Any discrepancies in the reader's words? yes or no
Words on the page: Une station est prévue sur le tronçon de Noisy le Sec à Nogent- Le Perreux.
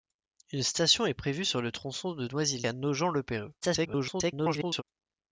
yes